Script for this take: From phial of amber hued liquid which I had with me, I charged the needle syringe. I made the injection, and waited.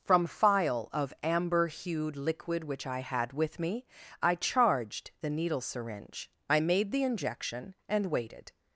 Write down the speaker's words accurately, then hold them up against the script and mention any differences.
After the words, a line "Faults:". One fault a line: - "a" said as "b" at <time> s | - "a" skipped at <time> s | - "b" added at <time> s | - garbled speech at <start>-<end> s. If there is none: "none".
From phial of amber hued liquid which I had with me, I charged the needle syringe. I made the injection, and waited.
Faults:
none